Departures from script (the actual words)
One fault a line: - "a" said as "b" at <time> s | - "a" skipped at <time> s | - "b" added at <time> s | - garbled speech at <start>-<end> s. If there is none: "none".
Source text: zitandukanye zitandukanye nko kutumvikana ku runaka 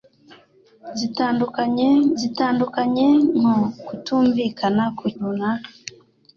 none